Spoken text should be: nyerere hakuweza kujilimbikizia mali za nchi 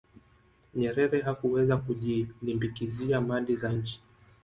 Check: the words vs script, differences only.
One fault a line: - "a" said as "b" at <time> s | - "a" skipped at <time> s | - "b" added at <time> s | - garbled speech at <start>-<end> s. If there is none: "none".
none